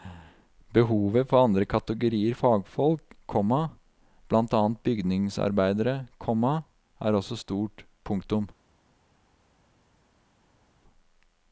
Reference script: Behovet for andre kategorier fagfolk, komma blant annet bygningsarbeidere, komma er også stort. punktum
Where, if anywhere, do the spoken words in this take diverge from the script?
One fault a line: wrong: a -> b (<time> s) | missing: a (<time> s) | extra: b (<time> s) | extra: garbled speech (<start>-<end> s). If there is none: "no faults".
no faults